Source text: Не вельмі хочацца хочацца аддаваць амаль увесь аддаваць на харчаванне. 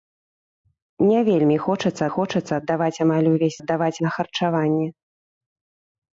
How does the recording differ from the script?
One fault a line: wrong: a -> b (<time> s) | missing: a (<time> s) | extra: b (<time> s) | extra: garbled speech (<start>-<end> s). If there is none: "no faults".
no faults